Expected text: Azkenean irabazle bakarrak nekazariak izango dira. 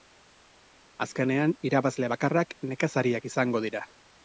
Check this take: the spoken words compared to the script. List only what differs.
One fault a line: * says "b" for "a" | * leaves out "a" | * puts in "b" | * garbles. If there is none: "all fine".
all fine